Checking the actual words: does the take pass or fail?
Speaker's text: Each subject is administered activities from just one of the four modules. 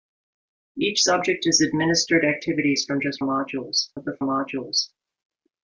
fail